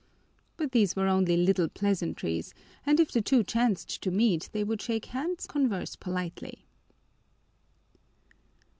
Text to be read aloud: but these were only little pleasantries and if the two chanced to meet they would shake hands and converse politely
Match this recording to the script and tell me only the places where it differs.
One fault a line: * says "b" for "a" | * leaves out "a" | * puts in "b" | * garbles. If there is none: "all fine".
* leaves out "and"